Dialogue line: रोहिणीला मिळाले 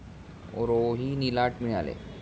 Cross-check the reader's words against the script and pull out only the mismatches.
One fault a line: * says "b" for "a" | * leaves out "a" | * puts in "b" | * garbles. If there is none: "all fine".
all fine